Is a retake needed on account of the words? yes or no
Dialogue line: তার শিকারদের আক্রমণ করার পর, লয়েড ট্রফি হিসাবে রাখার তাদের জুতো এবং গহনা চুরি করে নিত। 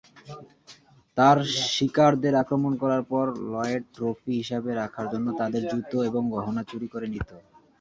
yes